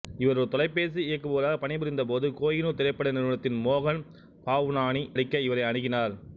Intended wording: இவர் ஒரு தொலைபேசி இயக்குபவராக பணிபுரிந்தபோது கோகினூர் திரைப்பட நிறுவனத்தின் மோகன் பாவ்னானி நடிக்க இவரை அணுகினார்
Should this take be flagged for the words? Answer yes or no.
no